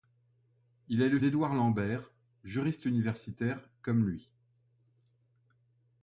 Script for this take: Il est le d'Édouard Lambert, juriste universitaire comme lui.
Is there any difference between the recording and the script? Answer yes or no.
no